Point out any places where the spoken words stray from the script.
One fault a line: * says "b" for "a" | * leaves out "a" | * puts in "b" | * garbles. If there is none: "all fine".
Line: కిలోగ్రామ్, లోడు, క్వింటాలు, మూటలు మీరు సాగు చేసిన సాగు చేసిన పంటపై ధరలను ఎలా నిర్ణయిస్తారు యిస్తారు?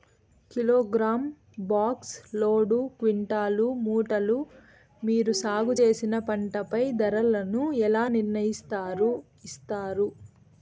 * puts in "బాక్స్"
* leaves out "సాగు చేసిన"